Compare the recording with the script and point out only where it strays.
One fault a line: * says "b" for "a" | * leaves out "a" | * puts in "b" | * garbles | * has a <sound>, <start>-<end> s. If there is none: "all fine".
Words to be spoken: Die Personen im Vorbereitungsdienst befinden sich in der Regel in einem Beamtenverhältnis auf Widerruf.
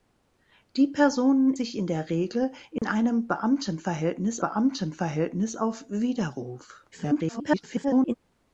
* leaves out "im Vorbereitungsdienst befinden"
* has a dropout, 2.8-2.8 s
* puts in "Beamtenverhältnis"
* garbles